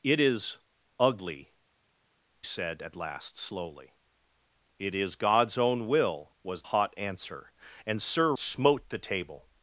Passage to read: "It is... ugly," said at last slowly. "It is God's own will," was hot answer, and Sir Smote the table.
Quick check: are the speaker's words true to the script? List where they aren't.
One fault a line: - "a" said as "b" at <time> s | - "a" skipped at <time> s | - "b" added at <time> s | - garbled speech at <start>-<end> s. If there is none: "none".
none